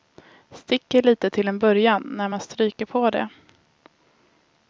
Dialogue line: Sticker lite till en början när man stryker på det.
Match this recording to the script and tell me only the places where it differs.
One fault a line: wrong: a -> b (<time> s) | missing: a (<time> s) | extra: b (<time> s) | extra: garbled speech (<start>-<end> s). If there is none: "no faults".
no faults